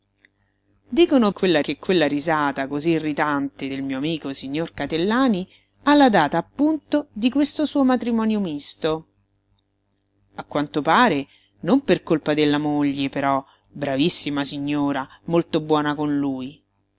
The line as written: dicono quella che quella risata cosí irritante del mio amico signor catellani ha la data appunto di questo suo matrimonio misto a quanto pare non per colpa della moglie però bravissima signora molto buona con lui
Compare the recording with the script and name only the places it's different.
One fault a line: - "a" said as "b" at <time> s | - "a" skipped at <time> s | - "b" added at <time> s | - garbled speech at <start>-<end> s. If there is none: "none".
none